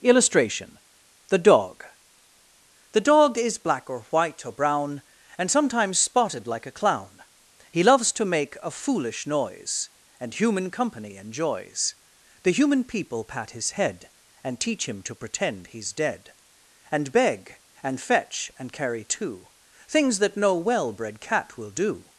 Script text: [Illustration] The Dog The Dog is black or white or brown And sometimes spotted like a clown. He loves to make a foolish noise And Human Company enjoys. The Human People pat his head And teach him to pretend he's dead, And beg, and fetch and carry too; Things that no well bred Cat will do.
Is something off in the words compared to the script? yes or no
no